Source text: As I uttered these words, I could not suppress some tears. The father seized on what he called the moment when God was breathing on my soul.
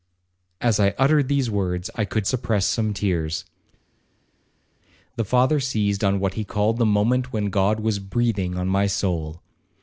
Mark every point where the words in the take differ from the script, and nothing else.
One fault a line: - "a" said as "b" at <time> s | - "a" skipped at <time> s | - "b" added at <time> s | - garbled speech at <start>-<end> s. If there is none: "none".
- "not" skipped at 2.3 s